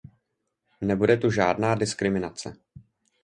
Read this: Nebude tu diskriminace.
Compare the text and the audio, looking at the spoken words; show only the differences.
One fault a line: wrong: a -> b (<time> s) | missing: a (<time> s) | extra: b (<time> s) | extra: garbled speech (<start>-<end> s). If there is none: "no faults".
extra: žádná (1.3 s)